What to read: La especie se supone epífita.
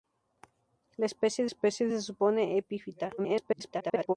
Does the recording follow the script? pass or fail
fail